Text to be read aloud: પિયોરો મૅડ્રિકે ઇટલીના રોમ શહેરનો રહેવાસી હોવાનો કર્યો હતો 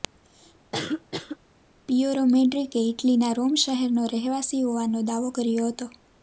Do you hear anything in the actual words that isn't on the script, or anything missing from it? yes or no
yes